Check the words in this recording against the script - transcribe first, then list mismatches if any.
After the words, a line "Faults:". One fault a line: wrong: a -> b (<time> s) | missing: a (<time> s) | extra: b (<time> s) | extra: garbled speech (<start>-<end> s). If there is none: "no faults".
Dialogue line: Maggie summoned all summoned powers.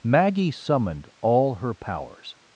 Maggie summoned all her powers.
Faults:
wrong: summoned -> her (1.6 s)